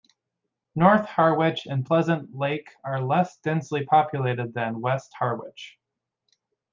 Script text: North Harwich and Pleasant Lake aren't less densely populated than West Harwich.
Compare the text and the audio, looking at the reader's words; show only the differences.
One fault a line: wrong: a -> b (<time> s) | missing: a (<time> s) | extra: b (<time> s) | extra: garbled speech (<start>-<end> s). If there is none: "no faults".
wrong: aren't -> are (2.8 s)